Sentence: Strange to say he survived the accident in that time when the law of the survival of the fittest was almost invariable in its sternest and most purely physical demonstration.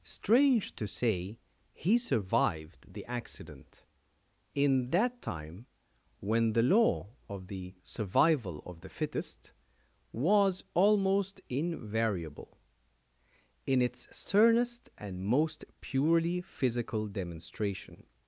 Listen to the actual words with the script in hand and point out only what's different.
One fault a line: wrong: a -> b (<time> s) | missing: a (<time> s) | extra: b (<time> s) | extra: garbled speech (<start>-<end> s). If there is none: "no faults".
no faults